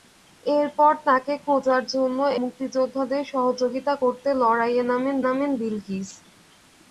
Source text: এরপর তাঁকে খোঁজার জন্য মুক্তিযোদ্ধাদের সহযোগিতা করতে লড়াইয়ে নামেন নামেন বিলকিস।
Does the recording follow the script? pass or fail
pass